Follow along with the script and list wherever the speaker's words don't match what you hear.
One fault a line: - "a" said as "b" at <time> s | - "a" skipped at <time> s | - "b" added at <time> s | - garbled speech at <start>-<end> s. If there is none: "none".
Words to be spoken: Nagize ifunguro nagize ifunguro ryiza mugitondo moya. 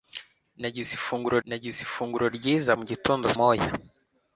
none